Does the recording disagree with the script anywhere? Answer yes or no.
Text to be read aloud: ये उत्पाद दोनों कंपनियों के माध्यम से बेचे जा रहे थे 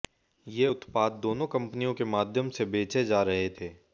no